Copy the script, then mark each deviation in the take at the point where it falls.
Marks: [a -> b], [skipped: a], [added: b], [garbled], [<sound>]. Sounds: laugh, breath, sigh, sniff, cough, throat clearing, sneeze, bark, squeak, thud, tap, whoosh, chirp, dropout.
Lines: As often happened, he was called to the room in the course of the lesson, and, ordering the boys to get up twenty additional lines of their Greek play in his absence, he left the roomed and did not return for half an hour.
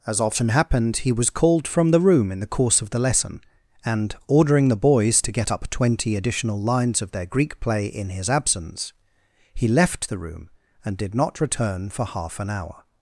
As often happened, he was called [to -> from] the room in the course of the lesson, and, ordering the boys to get up twenty additional lines of their Greek play in his absence, he left the [roomed -> room] and did not return for half an hour.